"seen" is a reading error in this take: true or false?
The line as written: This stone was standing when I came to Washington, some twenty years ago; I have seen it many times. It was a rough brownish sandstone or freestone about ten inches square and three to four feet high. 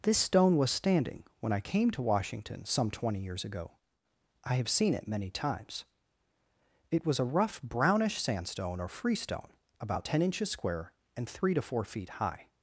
false